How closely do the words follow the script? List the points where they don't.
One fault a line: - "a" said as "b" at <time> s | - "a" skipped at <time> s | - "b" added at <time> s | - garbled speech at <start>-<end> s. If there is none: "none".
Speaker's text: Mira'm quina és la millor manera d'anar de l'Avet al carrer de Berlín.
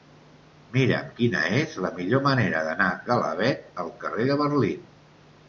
none